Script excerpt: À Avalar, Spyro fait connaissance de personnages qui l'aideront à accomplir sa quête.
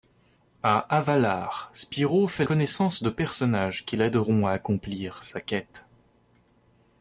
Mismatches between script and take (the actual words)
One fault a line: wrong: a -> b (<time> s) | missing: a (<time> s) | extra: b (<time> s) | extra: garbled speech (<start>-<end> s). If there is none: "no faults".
no faults